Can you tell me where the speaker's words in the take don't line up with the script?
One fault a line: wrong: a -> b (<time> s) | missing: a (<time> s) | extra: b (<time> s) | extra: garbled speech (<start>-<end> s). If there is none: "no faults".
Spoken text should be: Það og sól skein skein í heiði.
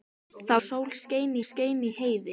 no faults